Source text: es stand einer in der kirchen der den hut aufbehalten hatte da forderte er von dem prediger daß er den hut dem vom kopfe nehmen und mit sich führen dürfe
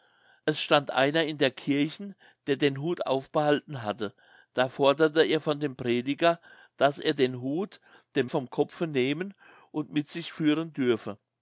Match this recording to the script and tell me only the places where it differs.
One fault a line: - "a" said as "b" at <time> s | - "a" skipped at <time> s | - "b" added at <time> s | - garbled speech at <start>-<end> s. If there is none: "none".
none